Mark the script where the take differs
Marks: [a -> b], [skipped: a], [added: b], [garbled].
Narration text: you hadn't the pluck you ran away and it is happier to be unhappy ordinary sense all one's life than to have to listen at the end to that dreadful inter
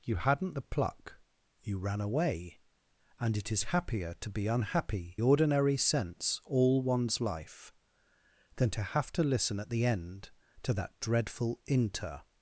you hadn't the pluck you ran away and it is happier to be unhappy ordinary sense all one's life than to have to listen at the end to that dreadful inter